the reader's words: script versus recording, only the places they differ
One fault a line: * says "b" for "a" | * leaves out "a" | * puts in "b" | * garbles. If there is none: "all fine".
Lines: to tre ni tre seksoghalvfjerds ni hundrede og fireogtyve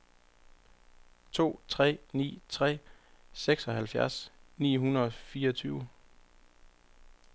all fine